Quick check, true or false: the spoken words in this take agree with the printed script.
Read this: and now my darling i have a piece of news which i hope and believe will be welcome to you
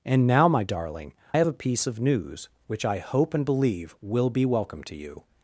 false